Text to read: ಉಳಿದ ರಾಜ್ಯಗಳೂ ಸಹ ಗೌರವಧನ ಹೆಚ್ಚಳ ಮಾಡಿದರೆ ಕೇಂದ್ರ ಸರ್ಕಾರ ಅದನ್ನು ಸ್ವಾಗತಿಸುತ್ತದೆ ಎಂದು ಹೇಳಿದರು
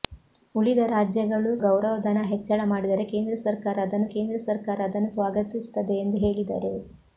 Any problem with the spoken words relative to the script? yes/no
yes